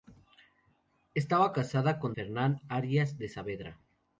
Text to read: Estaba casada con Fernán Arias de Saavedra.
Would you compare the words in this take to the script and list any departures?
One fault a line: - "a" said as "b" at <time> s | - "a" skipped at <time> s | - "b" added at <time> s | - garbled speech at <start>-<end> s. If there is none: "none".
none